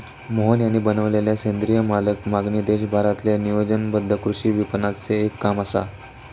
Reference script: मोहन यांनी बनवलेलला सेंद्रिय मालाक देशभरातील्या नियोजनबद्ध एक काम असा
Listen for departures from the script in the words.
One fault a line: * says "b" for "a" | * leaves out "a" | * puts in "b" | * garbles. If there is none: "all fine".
* puts in "मागणी"
* puts in "कृषी विपणनाचे"